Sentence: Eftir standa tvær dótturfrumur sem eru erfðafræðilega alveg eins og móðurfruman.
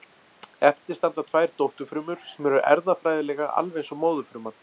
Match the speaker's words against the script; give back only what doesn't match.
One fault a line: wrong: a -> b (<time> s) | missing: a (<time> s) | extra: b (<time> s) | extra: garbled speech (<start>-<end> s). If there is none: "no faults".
no faults